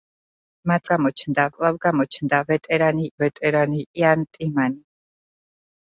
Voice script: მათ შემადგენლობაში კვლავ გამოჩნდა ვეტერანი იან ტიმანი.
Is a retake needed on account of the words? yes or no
yes